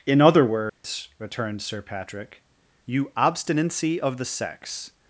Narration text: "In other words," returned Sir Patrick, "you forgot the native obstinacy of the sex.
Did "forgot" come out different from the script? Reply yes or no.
yes